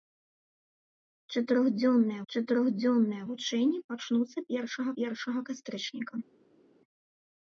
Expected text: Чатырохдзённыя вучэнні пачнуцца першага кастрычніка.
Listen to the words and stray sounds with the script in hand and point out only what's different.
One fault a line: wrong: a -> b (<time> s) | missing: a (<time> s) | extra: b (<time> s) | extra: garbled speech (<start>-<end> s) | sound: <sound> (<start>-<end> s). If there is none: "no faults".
extra: чатырохдзённыя (2.3 s)
extra: першага (5.0 s)